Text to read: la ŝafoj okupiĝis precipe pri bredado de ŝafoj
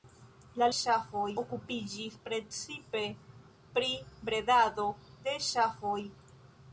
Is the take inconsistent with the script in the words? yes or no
no